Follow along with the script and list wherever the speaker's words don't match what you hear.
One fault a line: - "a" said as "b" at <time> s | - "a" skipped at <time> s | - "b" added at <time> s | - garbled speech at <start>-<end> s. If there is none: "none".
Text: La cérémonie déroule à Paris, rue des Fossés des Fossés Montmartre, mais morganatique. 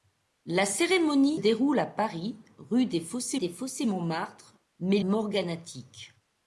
none